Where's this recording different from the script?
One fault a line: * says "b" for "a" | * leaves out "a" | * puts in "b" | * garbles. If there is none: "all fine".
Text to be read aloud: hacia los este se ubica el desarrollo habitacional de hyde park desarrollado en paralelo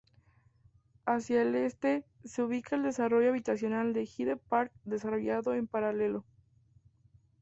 * says "el" for "los"